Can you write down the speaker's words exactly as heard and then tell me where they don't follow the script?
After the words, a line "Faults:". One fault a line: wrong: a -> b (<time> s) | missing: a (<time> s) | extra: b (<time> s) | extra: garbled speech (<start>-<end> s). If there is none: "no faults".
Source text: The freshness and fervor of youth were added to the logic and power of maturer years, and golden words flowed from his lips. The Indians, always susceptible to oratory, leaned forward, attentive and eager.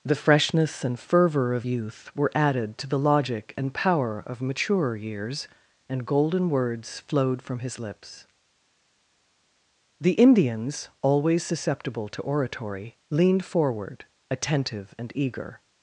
The freshness and fervor of youth were added to the logic and power of maturer years, and golden words flowed from his lips. The Indians, always susceptible to oratory, leaned forward, attentive and eager.
Faults:
no faults